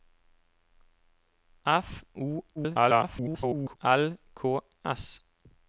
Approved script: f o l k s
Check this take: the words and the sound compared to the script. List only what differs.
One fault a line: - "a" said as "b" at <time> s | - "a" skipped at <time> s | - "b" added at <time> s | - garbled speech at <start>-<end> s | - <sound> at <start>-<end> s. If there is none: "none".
- garbled speech at 2.6-3.8 s